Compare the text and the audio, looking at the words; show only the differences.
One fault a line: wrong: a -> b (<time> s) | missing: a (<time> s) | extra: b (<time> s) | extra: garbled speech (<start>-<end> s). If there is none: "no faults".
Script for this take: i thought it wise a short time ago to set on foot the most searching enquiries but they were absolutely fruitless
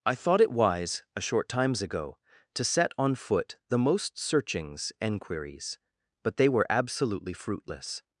wrong: time -> times (1.5 s)
wrong: searching -> searchings (4.2 s)